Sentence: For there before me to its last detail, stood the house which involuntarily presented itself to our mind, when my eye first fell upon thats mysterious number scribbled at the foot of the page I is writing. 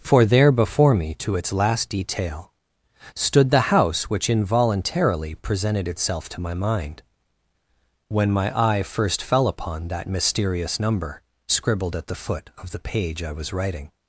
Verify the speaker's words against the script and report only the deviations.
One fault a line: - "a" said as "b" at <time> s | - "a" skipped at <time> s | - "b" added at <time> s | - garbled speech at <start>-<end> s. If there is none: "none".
- "our" said as "my" at 6.4 s
- "thats" said as "that" at 9.9 s
- "is" said as "was" at 13.3 s